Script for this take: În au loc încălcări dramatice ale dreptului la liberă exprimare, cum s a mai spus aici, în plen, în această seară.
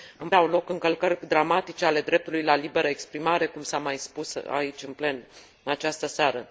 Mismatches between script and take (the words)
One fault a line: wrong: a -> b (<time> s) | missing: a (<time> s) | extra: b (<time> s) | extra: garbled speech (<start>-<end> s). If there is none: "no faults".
no faults